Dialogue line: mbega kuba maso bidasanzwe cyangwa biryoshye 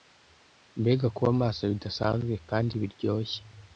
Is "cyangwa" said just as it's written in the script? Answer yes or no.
no